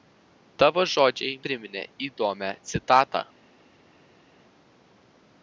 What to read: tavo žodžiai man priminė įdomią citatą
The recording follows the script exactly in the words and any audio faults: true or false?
false